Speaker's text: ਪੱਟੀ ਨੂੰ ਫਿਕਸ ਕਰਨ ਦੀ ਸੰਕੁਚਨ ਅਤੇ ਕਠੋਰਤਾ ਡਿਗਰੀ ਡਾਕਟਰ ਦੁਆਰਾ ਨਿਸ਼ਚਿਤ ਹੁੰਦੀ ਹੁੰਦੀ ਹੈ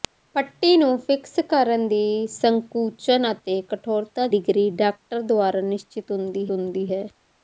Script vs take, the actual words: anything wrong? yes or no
no